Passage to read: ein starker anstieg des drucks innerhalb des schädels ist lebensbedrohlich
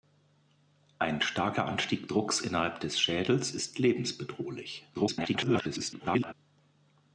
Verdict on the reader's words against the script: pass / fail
fail